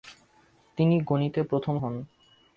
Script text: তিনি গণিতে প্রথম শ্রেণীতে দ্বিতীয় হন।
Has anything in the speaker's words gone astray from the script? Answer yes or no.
yes